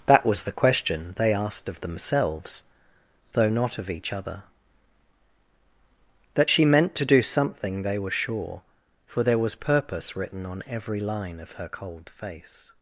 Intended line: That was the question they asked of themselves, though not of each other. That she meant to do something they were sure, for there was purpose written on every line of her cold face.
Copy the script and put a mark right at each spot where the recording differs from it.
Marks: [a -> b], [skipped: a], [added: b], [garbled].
That was the question they asked of themselves, though not of each other. That she meant to do something they were sure, for there was purpose written on every line of her cold face.